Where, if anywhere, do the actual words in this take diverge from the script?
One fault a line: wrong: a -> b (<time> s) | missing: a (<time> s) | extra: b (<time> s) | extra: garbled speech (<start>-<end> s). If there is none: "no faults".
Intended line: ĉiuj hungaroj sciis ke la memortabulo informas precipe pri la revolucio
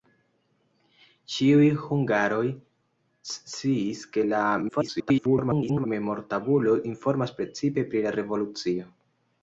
extra: garbled speech (4.7-5.9 s)